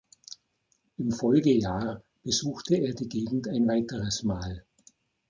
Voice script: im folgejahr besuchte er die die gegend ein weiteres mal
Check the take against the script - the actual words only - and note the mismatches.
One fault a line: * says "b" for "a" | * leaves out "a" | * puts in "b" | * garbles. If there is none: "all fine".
* leaves out "die"